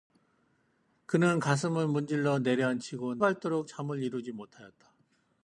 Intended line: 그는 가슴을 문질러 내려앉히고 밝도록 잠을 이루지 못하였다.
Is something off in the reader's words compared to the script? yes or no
no